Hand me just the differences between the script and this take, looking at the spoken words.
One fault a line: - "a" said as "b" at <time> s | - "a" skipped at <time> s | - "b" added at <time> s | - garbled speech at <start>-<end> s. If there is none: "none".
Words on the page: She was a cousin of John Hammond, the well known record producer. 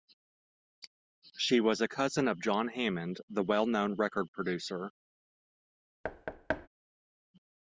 none